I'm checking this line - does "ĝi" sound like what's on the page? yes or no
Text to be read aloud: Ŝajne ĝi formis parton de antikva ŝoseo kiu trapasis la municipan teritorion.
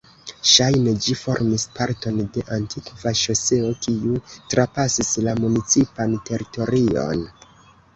yes